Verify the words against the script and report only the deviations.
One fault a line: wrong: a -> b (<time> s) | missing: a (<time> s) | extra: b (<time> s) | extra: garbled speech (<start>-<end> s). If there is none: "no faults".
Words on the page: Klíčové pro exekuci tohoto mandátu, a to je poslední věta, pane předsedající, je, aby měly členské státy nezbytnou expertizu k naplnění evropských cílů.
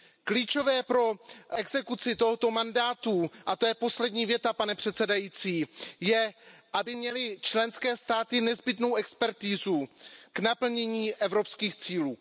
no faults